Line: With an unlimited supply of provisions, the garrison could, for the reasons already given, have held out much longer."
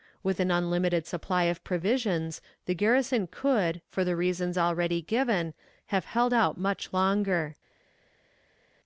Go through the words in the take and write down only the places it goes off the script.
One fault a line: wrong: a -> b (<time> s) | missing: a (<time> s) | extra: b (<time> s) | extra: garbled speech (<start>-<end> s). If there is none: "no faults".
no faults